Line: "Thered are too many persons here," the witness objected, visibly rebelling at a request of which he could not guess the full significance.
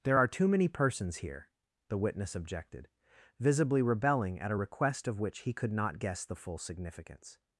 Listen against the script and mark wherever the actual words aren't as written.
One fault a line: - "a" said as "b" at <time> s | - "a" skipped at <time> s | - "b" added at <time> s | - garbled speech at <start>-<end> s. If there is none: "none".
- "Thered" said as "There" at 0.0 s